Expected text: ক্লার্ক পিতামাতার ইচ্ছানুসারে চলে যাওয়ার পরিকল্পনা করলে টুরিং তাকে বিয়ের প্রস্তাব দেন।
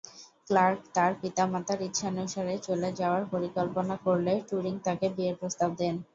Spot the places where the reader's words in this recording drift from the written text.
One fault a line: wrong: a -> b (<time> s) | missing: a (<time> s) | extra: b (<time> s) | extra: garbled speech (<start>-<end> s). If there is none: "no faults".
extra: তার (0.9 s)